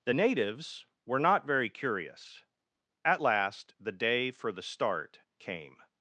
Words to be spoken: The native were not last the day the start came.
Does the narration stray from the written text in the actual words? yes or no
yes